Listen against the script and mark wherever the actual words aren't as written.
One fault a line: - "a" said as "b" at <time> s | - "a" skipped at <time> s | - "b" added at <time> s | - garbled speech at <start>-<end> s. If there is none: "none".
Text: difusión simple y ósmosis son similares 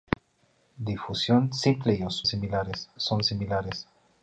- "ósmosis" said as "similares" at 2.2 s